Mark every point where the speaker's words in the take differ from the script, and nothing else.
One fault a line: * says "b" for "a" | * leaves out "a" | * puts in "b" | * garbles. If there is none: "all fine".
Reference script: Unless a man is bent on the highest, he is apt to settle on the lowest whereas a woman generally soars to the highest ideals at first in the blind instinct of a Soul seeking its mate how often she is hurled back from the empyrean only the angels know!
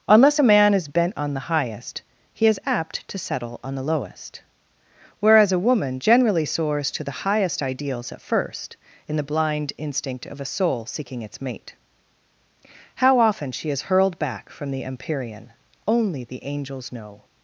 all fine